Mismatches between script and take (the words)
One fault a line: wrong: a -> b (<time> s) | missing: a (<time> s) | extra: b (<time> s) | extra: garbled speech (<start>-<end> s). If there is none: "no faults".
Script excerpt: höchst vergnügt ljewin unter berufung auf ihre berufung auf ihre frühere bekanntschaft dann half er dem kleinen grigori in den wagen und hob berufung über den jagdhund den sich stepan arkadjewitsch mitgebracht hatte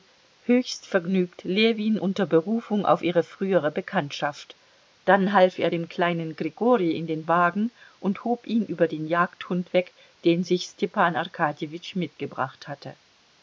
missing: berufung auf ihre (3.2 s)
wrong: berufung -> ihn (8.5 s)
extra: weg (9.7 s)